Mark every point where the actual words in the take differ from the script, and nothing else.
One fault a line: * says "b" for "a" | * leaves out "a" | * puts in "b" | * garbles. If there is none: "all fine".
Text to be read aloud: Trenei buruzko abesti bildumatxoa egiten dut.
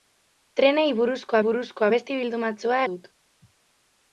* puts in "buruzko"
* leaves out "egiten"